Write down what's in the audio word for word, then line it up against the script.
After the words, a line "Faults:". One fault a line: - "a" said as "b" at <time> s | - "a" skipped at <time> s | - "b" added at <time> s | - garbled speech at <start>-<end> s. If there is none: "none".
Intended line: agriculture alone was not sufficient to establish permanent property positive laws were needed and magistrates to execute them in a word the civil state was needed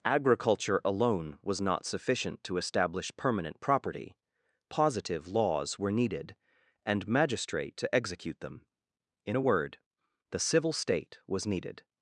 agriculture alone was not sufficient to establish permanent property positive laws were needed and magistrate to execute them in a word the civil state was needed
Faults:
- "magistrates" said as "magistrate" at 7.1 s